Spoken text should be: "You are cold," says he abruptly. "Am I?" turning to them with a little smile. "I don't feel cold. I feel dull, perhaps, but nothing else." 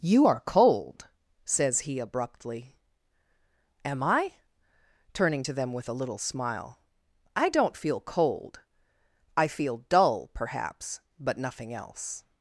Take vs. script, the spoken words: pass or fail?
pass